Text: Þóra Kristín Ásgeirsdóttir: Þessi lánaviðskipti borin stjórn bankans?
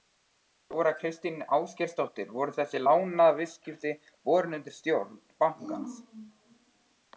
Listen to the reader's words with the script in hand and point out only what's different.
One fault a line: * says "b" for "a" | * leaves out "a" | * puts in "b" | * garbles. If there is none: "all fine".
* puts in "Voru"
* puts in "undir"